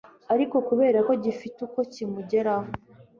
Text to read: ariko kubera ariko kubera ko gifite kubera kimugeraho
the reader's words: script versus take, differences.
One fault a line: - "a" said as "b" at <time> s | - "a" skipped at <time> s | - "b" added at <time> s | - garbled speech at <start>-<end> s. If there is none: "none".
- "ariko kubera" skipped at 1.0 s
- "kubera" said as "uko" at 1.7 s